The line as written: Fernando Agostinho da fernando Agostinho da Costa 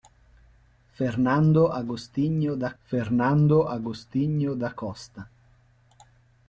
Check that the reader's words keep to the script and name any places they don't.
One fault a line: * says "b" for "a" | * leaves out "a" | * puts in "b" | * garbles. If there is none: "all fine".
all fine